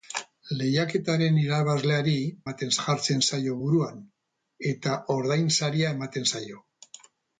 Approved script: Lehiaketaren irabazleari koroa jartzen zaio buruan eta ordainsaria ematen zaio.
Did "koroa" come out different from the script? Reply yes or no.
yes